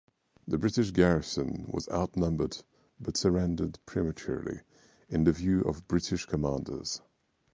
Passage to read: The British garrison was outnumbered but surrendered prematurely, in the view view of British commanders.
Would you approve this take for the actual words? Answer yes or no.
no